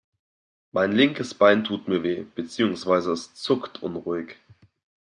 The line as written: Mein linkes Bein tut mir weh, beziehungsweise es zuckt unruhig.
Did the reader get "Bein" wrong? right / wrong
right